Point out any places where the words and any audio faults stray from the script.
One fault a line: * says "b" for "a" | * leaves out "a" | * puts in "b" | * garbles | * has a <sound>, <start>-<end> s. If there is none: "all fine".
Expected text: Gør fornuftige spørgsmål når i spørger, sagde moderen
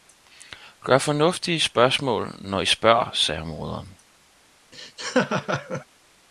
* has a laugh, 4.7-5.9 s